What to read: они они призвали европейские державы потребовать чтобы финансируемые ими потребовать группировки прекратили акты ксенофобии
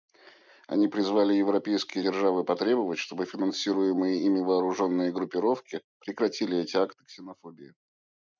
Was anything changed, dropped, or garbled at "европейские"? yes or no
no